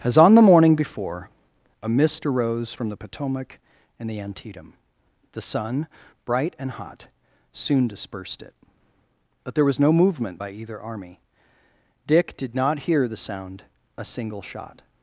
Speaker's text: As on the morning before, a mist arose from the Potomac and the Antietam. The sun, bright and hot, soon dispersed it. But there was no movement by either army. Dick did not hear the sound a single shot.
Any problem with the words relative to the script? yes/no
no